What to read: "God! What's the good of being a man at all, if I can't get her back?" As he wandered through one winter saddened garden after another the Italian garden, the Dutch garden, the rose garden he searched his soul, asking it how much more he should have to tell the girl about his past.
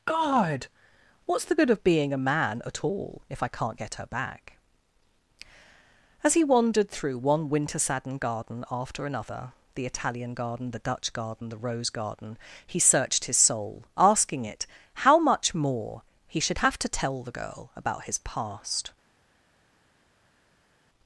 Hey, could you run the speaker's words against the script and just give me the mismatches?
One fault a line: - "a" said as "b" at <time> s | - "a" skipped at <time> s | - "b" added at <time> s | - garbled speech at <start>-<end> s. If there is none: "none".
none